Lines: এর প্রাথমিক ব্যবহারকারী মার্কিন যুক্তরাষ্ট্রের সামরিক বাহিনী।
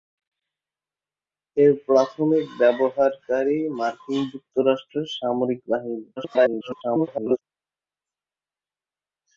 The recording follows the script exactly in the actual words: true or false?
false